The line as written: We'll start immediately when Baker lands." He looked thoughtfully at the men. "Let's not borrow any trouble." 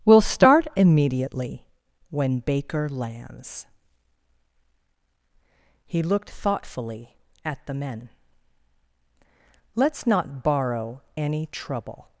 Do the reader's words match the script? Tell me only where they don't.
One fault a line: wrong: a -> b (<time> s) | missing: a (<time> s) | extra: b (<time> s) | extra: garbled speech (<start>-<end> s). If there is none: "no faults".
no faults